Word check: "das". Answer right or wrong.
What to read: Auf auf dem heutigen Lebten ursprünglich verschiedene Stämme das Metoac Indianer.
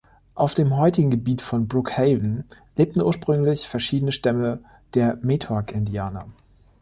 wrong